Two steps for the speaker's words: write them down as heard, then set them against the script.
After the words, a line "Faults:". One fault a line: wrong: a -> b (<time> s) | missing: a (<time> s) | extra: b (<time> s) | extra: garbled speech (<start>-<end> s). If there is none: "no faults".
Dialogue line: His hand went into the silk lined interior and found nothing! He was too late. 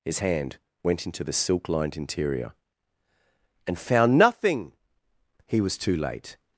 His hand went into the silk lined interior and found nothing! He was too late.
Faults:
no faults